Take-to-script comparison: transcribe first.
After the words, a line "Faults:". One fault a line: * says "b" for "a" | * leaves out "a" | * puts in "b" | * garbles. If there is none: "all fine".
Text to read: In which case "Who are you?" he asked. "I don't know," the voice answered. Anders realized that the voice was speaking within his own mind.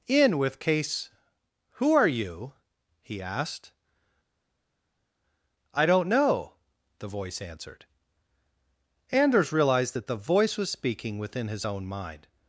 In with case "Who are you?" he asked. "I don't know," the voice answered. Anders realized that the voice was speaking within his own mind.
Faults:
* says "with" for "which"